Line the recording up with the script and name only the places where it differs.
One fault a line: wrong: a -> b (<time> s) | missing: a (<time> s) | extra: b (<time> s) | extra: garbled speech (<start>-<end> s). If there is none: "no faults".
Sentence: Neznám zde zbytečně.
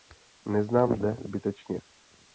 no faults